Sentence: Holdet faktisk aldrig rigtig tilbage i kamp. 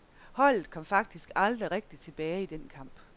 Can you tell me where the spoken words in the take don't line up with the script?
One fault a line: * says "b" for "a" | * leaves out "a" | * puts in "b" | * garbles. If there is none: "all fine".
* puts in "kom"
* puts in "den"